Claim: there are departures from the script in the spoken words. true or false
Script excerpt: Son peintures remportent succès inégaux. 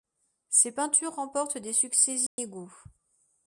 true